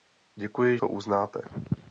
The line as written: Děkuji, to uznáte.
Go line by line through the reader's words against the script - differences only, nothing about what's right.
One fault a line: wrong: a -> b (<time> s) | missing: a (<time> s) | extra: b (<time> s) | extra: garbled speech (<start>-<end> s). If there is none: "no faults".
no faults